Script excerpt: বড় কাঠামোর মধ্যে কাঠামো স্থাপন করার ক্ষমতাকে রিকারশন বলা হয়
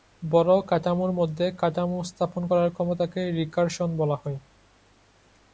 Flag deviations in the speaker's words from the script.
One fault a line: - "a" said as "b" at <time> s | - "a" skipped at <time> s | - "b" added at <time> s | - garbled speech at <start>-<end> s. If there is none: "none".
none